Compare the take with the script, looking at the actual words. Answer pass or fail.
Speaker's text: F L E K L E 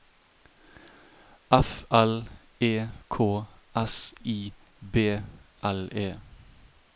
fail